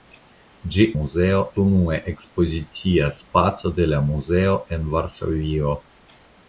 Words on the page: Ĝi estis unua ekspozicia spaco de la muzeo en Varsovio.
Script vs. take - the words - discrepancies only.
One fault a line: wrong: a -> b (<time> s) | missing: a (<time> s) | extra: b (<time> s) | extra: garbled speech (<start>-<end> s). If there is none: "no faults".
wrong: estis -> muzeo (1.0 s)